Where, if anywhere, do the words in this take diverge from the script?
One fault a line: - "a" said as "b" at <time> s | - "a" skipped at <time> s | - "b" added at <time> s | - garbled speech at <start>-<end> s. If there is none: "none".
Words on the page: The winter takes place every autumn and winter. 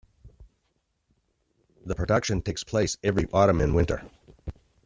- "winter" said as "production" at 1.9 s